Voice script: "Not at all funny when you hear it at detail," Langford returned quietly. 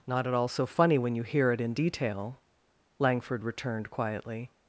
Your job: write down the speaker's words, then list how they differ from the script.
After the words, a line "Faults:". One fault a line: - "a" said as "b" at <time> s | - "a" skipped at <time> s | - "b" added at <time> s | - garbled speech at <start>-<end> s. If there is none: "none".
"Not at all so funny when you hear it in detail," Langford returned quietly.
Faults:
- "so" added at 0.5 s
- "at" said as "in" at 1.6 s